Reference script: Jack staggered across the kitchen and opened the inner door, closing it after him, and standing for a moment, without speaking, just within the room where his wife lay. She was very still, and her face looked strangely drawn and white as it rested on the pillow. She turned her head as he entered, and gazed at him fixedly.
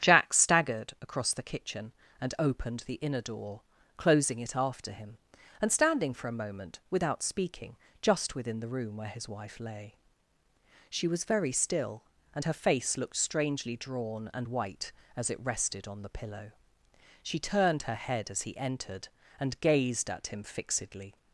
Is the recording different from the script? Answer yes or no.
no